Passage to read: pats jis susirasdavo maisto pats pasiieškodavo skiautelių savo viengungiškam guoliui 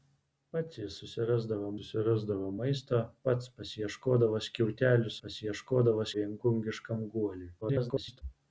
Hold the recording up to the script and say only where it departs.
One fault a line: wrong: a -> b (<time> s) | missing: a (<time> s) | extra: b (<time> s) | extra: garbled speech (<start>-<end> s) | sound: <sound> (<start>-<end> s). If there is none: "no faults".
extra: susirasdavo (1.8 s)
wrong: savo -> pasiieškodavo (5.2 s)
extra: garbled speech (7.6-8.2 s)